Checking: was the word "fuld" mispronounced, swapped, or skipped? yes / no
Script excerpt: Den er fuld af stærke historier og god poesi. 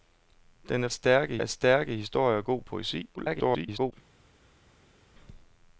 yes